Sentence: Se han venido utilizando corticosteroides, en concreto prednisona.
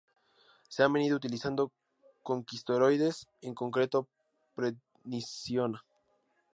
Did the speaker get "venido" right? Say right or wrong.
right